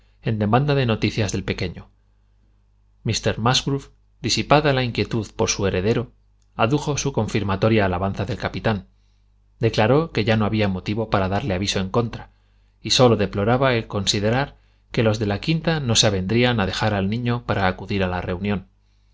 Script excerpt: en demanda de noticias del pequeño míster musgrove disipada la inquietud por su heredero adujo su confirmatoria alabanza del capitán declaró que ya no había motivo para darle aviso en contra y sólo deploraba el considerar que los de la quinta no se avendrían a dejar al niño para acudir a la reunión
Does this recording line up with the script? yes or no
yes